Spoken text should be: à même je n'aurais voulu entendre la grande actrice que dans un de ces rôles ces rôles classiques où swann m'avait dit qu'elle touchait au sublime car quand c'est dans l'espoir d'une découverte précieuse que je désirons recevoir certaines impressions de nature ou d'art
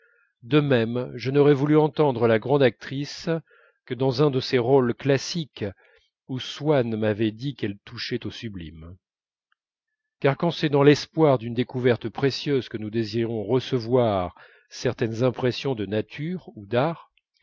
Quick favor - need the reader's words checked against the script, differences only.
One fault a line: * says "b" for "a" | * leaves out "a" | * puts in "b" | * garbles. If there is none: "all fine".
* says "de" for "à"
* leaves out "ces rôles"
* says "nous" for "je"